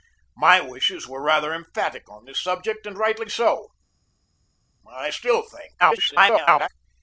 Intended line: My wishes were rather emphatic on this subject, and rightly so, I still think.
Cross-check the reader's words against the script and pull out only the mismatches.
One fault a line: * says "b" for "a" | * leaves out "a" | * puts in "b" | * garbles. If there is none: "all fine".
* garbles